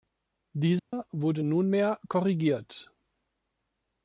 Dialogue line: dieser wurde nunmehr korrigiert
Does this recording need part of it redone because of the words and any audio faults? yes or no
yes